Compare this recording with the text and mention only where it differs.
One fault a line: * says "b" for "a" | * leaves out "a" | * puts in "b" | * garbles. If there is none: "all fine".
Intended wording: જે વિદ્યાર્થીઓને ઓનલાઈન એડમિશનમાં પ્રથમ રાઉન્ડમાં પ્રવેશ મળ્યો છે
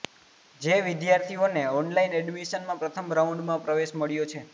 all fine